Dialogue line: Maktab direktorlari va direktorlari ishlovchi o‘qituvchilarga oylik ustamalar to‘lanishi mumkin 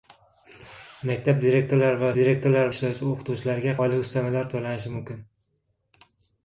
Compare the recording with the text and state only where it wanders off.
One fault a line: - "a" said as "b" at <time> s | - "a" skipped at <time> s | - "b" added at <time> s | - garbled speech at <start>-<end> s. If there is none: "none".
none